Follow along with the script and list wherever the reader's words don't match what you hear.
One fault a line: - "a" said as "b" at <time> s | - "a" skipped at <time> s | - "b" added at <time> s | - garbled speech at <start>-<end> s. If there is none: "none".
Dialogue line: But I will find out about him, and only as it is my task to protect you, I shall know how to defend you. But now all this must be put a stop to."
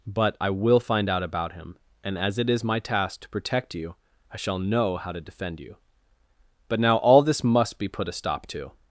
- "only" skipped at 2.2 s